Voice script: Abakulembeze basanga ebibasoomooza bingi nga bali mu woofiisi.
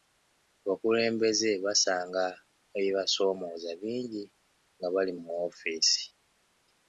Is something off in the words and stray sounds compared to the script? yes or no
no